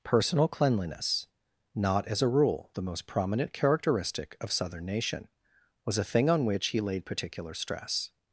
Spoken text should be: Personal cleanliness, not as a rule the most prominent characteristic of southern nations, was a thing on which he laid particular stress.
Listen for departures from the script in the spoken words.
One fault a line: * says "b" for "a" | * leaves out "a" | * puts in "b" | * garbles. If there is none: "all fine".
* says "nation" for "nations"